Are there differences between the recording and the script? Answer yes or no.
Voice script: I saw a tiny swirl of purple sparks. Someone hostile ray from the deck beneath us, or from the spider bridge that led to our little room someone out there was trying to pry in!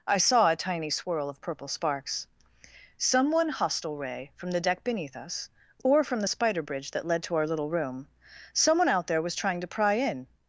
no